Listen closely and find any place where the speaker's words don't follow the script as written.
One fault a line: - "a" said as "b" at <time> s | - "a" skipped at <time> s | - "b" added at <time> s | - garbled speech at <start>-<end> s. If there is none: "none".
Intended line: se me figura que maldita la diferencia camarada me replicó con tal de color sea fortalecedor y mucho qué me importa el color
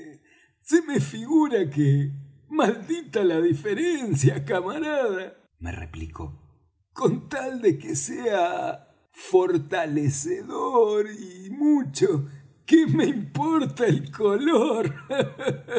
- "color" said as "que" at 7.8 s